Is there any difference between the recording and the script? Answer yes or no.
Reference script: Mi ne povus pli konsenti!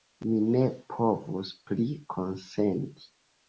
no